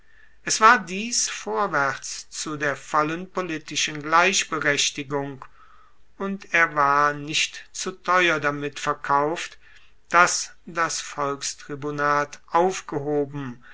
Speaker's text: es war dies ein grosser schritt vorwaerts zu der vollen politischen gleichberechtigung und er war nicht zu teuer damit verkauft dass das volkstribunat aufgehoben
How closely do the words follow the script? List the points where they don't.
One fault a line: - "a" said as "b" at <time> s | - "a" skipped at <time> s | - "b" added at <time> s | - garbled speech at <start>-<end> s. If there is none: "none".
- "ein grosser schritt" skipped at 1.3 s